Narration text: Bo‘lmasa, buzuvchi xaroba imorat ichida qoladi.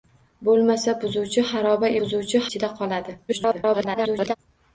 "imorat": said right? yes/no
no